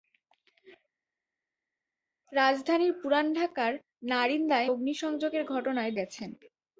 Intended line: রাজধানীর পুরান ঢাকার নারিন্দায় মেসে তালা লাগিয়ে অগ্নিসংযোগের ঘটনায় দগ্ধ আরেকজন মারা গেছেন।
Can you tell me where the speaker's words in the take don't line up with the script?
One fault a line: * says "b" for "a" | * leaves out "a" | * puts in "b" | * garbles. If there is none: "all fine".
* leaves out "মেসে তালা লাগিয়ে"
* leaves out "দগ্ধ আরেকজন মারা"